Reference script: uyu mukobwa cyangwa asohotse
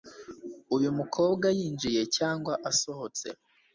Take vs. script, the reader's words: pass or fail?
fail